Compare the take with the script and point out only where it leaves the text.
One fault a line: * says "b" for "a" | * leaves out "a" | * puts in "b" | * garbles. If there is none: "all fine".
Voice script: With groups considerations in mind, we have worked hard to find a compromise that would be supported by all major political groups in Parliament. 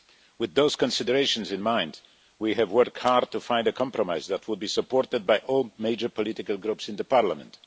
* says "those" for "groups"